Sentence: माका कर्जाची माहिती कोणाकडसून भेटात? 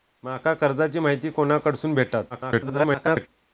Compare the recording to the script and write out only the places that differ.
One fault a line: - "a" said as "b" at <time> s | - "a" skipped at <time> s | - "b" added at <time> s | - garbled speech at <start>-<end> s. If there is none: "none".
- garbled speech at 2.3-3.3 s